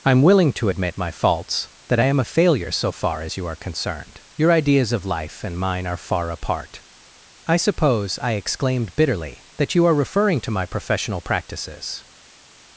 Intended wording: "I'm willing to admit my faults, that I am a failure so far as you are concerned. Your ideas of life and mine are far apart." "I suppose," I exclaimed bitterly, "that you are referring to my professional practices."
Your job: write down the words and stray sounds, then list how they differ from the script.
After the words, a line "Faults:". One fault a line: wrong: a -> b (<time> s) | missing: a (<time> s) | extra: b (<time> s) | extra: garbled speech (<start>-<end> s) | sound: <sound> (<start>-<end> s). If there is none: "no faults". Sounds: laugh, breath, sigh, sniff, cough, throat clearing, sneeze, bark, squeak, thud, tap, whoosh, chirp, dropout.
"I'm willing to admit my faults, that I am a failure so far as you are concerned. Your ideas of life and mine are far apart." "I suppose," I exclaimed bitterly, "that you are referring to my professional practices."
Faults:
no faults